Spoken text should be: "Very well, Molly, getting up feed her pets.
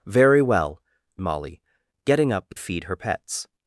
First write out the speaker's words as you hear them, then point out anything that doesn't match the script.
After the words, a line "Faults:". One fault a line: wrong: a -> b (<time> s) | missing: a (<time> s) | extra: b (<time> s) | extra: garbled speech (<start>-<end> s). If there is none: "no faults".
"Very well, Molly, getting up feed her pets.
Faults:
no faults